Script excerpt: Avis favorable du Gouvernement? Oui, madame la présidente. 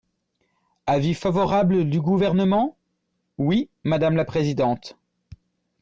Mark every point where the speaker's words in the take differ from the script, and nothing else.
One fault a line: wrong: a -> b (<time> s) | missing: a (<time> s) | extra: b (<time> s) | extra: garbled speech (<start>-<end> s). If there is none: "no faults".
no faults